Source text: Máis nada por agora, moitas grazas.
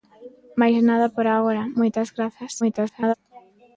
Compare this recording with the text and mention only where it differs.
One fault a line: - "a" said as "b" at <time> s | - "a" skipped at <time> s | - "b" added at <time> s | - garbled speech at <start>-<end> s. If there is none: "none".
- garbled speech at 2.6-3.1 s